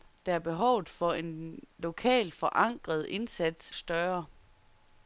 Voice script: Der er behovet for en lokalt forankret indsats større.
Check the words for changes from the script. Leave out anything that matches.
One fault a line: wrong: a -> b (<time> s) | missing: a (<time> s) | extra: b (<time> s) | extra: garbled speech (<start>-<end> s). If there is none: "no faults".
no faults